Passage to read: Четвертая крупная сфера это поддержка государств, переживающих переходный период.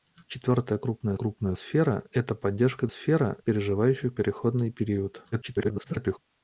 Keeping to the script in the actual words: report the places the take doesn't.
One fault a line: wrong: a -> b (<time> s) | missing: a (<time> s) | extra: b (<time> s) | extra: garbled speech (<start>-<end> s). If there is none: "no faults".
extra: крупная (1.2 s)
wrong: государств -> сфера (2.9 s)
extra: garbled speech (5.3-6.2 s)